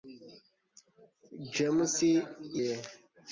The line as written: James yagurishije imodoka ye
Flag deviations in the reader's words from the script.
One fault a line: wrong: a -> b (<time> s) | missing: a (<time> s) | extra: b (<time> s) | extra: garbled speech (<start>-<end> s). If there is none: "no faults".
missing: yagurishije imodoka (1.9 s)